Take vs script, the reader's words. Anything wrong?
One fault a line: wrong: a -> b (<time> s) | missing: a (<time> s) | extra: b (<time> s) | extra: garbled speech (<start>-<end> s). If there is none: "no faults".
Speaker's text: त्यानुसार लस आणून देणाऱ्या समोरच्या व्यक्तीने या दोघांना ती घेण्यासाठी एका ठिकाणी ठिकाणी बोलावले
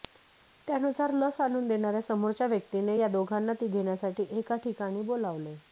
missing: ठिकाणी (5.0 s)